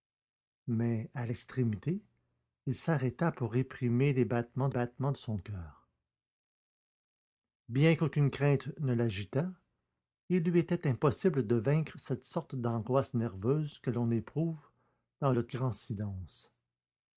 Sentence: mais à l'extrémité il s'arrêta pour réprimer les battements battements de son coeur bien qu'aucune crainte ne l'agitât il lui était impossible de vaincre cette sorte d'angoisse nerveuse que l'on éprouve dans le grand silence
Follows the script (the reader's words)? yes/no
yes